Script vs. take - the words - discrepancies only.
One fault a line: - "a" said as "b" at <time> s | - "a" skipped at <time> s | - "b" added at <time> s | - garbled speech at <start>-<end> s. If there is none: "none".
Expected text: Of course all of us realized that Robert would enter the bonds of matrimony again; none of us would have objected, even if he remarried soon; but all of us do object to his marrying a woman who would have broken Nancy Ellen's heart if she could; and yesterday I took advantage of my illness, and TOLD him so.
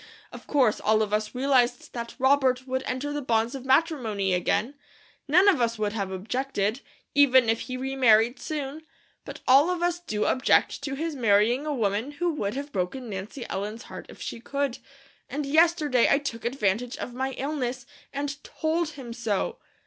none